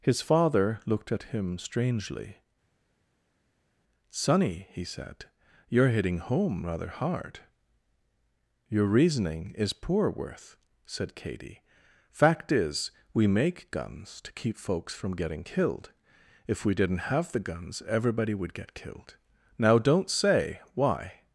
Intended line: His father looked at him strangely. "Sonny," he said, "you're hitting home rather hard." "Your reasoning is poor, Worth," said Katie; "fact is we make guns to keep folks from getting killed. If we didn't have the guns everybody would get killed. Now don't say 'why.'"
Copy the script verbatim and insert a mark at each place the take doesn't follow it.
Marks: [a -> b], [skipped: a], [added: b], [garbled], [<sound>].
His father looked at him strangely. "Sonny," he said, "you're hitting home rather hard." "Your reasoning is poor, Worth," said Katie; "fact is we make guns to keep folks from getting killed. If we didn't have the guns everybody would get killed. Now don't say 'why.'"